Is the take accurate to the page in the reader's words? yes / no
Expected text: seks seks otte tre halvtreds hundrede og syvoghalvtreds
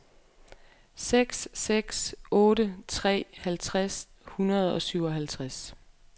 yes